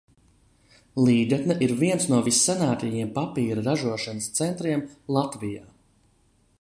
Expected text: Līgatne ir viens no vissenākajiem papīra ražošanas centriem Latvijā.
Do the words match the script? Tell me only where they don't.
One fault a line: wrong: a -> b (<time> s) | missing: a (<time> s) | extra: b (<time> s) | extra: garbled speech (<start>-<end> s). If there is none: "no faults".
no faults